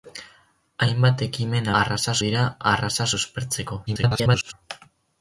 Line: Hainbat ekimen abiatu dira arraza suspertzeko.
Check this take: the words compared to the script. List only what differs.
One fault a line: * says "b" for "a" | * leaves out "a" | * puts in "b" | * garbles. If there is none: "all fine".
* says "arraza" for "abiatu"
* garbles